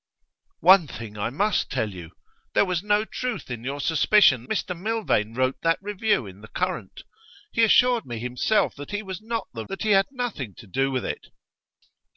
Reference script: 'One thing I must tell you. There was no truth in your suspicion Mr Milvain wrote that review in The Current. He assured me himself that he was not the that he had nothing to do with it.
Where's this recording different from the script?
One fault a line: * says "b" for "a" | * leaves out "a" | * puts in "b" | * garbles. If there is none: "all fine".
all fine